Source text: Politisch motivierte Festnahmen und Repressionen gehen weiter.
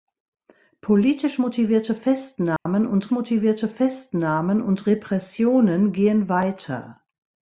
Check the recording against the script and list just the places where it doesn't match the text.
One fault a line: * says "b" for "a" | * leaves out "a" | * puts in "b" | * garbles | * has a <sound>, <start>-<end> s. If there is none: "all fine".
* has a dropout, 2.6-2.7 s
* puts in "motivierte Festnahmen und"